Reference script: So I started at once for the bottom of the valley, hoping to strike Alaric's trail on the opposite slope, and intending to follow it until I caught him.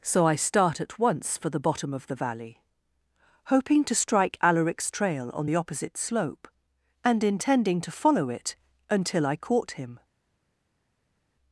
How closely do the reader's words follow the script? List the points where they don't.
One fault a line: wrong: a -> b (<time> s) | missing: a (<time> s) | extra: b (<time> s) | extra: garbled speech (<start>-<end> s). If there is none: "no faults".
wrong: started -> start (0.3 s)